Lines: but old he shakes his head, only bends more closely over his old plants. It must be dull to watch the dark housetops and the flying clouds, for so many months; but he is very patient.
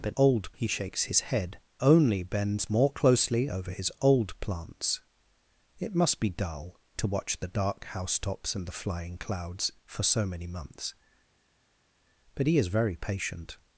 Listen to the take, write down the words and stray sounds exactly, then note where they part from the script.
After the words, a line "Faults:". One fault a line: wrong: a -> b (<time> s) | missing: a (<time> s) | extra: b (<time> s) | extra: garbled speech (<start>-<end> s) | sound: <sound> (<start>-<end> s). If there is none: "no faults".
but old he shakes his head, only bends more closely over his old plants. It must be dull to watch the dark housetops and the flying clouds, for so many months; but he is very patient.
Faults:
no faults